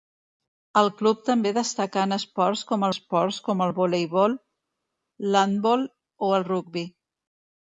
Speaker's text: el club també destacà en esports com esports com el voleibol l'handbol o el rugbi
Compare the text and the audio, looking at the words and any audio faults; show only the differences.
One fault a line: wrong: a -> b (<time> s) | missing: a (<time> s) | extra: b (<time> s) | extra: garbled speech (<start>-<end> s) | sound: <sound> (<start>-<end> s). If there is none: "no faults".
no faults